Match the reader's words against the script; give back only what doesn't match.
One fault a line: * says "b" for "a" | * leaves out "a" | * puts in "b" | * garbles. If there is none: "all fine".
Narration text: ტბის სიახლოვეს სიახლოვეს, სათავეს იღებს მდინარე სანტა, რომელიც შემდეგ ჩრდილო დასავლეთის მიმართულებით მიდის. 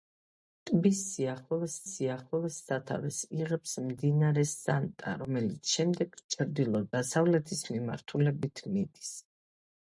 all fine